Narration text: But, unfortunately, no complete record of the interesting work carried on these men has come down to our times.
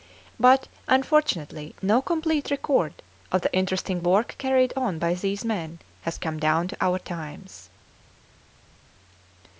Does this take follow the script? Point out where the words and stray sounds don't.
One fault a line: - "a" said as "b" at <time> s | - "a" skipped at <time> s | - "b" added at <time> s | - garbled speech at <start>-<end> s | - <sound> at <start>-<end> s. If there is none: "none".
- "by" added at 5.0 s